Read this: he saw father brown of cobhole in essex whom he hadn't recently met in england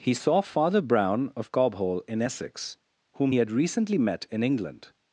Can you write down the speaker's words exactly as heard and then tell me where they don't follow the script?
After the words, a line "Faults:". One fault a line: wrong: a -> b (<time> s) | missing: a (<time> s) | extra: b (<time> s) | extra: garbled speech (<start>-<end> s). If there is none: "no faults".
he saw father brown of cobhole in essex whom he had recently met in england
Faults:
wrong: hadn't -> had (3.4 s)